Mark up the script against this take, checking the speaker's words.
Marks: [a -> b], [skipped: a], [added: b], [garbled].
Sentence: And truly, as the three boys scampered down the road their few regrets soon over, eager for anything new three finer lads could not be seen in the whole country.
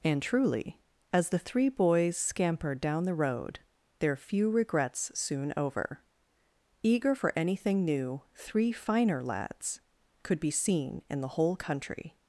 And truly, as the three boys scampered down the road their few regrets soon over, eager for anything new three finer lads could [skipped: not] be seen in the whole country.